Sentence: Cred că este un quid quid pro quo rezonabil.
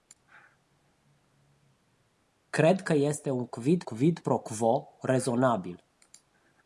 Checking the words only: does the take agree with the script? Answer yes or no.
yes